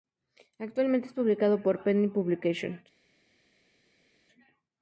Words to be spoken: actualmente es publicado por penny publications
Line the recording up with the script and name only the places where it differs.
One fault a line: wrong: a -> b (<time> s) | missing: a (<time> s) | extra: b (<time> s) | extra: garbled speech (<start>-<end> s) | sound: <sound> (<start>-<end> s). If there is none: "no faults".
no faults